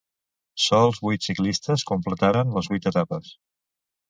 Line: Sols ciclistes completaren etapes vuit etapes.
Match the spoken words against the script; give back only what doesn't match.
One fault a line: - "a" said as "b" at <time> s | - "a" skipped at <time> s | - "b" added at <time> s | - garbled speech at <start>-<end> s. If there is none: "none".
- "vuit" added at 1.1 s
- "etapes" said as "les" at 2.6 s